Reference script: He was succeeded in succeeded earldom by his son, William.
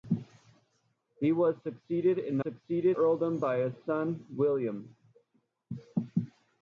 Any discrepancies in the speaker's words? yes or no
no